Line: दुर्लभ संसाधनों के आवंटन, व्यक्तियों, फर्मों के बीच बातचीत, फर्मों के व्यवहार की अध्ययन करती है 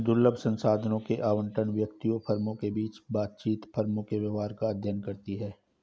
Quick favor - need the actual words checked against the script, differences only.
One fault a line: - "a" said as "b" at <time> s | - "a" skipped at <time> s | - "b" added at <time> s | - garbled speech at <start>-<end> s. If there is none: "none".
- "की" said as "का" at 4.5 s